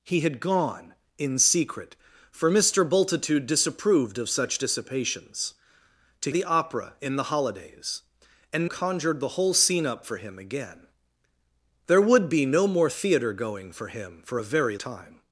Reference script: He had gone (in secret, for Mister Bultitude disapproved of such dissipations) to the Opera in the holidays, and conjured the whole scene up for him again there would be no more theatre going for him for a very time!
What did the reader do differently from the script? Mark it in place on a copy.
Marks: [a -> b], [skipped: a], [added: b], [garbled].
He had gone (in secret, for Mister Bultitude disapproved of such dissipations) to the Opera in the holidays, and conjured the whole scene up for him again there would be no more theatre going for him for a very time!